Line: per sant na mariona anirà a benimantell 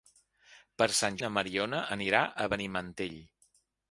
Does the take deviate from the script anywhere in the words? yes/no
no